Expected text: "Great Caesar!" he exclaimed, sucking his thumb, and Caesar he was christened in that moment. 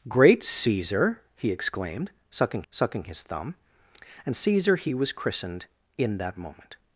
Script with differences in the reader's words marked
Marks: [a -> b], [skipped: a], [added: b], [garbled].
"Great Caesar!" he exclaimed, sucking [added: sucking] his thumb, and Caesar he was christened in that moment.